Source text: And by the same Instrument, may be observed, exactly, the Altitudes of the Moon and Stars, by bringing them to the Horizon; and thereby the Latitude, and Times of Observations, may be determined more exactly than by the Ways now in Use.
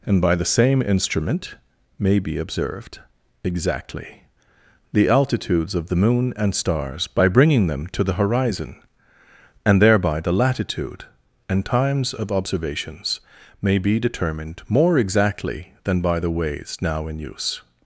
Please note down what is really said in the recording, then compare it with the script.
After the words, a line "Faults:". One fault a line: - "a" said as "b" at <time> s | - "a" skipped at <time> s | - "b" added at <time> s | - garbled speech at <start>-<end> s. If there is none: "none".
And by the same Instrument, may be observed, exactly, the Altitudes of the Moon and Stars, by bringing them to the Horizon; and thereby the Latitude, and Times of Observations, may be determined more exactly than by the Ways now in Use.
Faults:
none